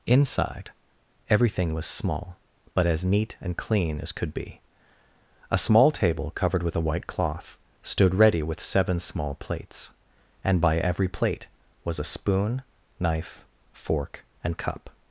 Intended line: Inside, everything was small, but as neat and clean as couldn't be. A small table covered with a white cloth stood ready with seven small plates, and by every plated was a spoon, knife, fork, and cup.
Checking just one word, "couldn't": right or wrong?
wrong